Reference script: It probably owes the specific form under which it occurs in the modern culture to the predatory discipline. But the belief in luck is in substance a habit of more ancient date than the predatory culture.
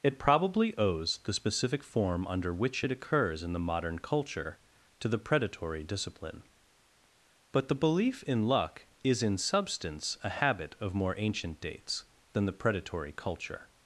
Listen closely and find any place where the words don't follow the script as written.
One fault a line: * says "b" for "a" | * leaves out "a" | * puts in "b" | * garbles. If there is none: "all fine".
* says "dates" for "date"